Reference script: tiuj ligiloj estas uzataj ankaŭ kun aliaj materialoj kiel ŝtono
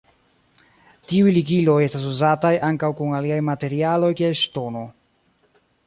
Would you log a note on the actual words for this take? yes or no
no